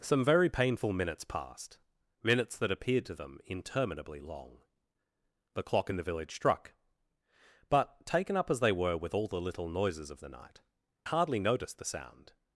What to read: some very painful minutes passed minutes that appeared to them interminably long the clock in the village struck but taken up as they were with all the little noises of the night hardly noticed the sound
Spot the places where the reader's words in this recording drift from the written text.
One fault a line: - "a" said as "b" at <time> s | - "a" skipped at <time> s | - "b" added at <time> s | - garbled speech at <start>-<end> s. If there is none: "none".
none